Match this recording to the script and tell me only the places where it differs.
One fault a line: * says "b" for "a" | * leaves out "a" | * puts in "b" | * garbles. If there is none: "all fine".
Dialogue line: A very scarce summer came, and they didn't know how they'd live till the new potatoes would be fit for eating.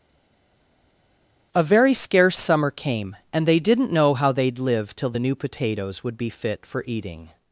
all fine